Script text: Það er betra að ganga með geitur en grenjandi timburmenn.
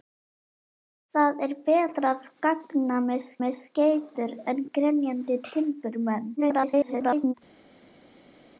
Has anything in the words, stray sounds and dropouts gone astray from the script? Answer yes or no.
yes